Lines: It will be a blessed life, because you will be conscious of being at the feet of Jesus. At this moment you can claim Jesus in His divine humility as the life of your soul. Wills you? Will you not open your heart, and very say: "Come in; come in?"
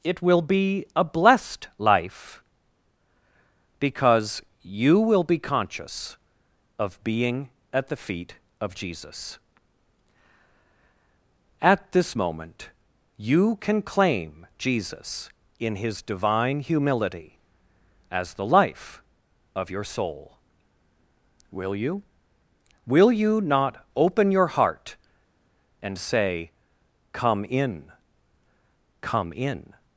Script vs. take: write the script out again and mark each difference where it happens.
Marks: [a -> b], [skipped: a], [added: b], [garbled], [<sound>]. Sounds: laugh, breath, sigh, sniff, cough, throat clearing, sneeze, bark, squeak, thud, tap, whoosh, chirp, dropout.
It will be a blessed life, because you will be conscious of being at the feet of Jesus. At this moment you can claim Jesus in His divine humility as the life of your soul. [Wills -> Will] you? Will you not open your heart, and [skipped: very] say: "Come in; come in?"